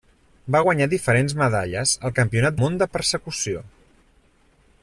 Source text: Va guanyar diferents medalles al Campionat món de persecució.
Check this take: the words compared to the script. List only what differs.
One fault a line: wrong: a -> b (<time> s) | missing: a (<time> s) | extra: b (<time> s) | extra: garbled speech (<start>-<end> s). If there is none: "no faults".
no faults